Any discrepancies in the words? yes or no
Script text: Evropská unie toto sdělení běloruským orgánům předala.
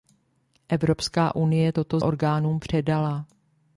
yes